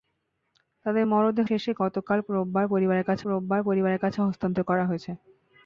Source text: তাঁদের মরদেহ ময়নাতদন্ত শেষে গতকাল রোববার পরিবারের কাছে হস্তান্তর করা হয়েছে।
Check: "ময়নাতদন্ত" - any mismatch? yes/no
yes